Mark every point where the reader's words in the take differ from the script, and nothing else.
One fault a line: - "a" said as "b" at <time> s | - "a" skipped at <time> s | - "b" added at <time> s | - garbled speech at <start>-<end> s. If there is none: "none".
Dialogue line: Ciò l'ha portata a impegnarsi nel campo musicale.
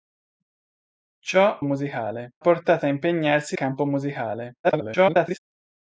- "l'ha" said as "musicale" at 1.6 s
- "nel" skipped at 3.6 s
- garbled speech at 4.6-5.4 s